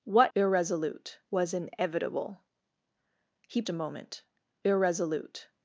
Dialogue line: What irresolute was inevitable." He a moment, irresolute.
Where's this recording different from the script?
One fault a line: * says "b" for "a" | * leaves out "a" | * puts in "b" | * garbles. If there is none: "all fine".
all fine